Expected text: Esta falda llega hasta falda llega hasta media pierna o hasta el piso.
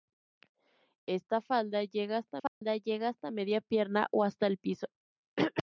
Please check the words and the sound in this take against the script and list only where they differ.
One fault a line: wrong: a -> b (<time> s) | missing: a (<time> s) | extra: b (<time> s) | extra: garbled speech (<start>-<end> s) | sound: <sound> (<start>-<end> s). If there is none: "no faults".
sound: dropout (2.5-2.6 s)